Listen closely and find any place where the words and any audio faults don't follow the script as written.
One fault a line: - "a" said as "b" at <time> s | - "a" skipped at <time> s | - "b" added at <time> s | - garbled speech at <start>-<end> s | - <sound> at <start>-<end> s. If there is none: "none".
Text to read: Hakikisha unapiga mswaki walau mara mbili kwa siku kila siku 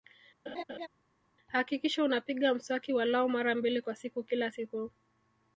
- laugh at 0.5-0.9 s